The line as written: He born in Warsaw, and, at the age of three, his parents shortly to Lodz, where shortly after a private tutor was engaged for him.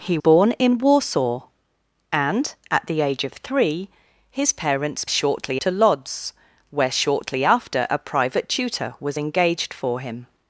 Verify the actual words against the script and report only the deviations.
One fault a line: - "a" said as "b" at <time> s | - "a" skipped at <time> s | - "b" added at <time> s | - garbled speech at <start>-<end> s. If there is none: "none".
none